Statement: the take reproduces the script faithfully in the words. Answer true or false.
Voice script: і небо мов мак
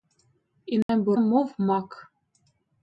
true